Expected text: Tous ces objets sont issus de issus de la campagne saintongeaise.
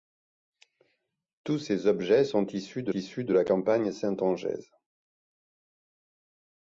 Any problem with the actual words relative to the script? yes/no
no